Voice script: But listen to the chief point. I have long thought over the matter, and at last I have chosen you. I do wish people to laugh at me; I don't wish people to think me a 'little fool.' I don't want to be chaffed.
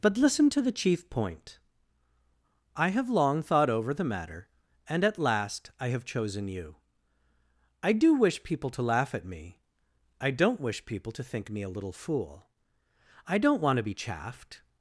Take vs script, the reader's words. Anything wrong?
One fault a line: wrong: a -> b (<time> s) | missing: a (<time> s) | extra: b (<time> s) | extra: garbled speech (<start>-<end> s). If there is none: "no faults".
no faults